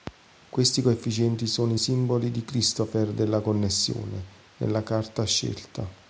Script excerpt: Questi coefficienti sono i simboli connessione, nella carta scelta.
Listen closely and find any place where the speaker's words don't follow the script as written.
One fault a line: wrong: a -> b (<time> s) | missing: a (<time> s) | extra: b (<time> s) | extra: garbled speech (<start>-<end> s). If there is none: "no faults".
extra: di Christoffel della (2.3 s)